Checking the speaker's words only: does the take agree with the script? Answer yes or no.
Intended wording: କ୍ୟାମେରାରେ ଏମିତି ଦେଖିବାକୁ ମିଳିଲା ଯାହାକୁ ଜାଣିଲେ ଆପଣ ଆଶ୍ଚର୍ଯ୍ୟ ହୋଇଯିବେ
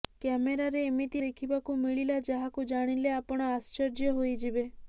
yes